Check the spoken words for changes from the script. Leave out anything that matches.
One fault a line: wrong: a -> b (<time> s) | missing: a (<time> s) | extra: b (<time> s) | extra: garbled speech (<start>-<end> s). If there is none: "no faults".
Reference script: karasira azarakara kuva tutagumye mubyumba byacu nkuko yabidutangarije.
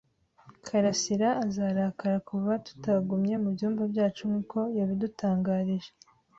no faults